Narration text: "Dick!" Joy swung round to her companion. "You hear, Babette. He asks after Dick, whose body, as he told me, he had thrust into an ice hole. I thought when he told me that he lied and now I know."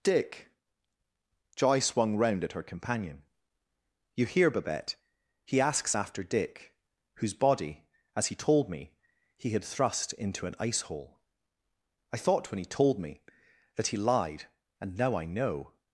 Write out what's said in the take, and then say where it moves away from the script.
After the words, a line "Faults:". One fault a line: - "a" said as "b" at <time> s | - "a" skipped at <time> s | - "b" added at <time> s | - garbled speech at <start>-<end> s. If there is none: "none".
"Dick!" Joy swung round at her companion. "You hear, Babette. He asks after Dick, whose body, as he told me, he had thrust into an ice hole. I thought when he told me that he lied and now I know."
Faults:
- "to" said as "at" at 2.4 s